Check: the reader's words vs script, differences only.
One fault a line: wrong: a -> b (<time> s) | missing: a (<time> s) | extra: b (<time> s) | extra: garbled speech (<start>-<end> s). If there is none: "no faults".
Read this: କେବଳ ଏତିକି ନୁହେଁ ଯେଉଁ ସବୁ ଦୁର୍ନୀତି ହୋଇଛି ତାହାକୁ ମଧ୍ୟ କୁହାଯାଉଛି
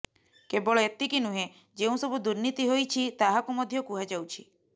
no faults